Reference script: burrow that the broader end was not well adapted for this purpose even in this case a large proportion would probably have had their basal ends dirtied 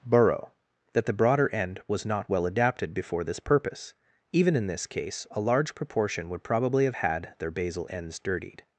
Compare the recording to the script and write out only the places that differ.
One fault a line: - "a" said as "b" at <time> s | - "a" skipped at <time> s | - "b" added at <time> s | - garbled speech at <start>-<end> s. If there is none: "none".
- "for" said as "before" at 2.9 s